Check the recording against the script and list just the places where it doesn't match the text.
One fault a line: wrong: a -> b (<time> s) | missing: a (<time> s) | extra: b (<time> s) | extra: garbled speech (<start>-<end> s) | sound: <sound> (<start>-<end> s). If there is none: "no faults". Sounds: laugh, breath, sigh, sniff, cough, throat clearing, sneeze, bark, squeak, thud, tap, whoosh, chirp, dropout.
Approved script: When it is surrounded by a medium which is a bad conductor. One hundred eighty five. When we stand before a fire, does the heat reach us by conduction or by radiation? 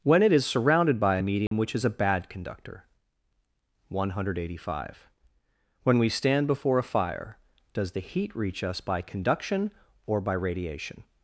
sound: dropout (1.5-1.5 s)